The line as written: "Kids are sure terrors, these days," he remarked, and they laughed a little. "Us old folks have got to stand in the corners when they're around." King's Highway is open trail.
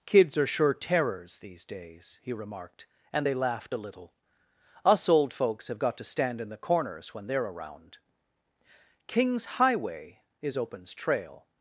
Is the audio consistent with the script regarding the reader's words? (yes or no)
no